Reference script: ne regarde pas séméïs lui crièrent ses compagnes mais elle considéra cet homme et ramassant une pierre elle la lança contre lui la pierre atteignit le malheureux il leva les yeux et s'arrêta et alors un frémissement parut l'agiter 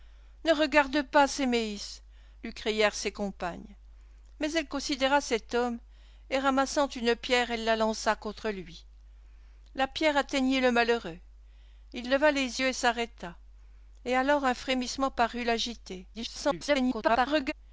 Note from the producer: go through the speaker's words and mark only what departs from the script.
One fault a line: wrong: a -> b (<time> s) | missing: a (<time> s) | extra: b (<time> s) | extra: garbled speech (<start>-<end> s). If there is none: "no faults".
extra: garbled speech (16.1-17.5 s)